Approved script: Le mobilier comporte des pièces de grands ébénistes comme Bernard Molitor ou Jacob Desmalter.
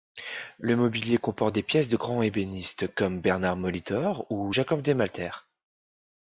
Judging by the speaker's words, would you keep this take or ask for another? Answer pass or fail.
pass